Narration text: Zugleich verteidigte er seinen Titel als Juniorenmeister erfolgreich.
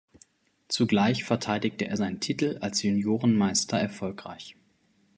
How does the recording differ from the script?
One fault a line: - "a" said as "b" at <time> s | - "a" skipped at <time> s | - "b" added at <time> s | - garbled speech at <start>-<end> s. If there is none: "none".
none